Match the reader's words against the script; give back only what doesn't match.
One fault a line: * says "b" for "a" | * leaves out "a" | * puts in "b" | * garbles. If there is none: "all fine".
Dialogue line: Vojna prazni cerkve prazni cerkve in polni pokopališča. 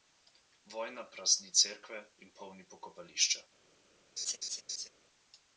* leaves out "prazni cerkve"